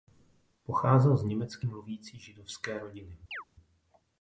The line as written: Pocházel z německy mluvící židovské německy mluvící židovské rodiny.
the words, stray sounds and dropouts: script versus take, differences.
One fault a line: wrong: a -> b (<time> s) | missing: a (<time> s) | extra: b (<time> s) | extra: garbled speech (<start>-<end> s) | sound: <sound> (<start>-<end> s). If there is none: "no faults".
missing: německy mluvící židovské (2.8 s)
sound: chirp (3.3-3.4 s)